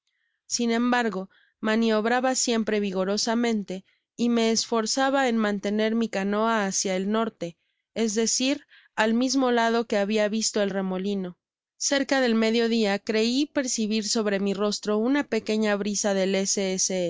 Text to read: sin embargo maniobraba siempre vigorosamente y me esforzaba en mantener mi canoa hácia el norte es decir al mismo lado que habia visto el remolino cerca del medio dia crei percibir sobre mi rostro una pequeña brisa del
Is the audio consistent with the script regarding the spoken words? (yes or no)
yes